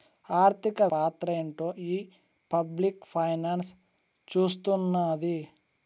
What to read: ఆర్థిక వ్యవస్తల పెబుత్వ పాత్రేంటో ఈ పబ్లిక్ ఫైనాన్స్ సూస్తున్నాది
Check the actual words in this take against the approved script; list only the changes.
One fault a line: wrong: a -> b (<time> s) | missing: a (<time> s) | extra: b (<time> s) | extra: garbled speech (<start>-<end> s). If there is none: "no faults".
missing: వ్యవస్తల పెబుత్వ (0.8 s)